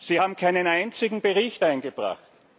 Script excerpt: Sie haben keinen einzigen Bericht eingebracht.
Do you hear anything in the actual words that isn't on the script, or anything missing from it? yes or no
no